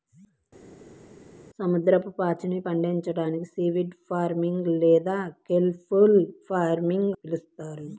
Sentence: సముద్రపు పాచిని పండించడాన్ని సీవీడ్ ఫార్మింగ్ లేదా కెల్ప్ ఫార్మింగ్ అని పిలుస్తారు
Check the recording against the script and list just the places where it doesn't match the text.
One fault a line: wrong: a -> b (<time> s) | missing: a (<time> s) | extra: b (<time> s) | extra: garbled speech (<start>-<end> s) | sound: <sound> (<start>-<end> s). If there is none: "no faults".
missing: అని (7.1 s)